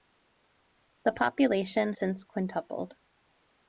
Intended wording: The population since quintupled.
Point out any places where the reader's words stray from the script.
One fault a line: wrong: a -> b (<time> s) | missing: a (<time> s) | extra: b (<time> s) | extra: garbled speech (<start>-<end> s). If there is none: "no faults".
no faults